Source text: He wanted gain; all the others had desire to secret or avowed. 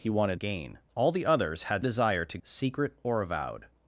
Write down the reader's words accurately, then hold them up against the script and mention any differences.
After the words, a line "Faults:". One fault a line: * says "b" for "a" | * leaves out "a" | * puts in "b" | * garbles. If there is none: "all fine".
He wanted gain; all the others had desire to secret or avowed.
Faults:
all fine